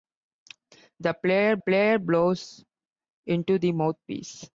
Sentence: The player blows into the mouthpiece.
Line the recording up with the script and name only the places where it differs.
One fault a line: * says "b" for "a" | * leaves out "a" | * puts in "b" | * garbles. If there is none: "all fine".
* puts in "player"